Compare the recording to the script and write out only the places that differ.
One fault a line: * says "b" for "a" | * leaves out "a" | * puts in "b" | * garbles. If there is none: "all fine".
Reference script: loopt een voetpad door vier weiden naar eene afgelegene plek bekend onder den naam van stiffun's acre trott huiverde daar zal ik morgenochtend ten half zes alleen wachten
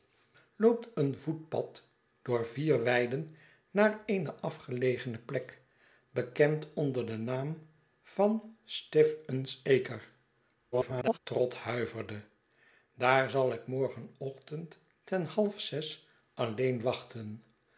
* garbles